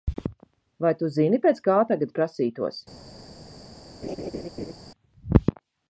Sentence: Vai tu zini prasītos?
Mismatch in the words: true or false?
true